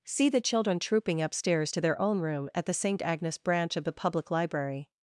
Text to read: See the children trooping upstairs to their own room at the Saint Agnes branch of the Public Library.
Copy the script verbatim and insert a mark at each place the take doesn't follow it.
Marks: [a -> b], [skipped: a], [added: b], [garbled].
See the children trooping upstairs to their own room at the Saint Agnes branch of the Public Library.